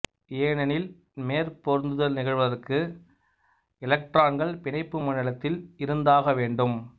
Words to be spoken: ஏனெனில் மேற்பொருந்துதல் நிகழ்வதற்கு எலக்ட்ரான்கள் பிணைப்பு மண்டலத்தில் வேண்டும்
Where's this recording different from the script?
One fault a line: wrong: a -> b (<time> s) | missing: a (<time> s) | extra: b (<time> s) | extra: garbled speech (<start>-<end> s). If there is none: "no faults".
extra: இருந்தாக (5.8 s)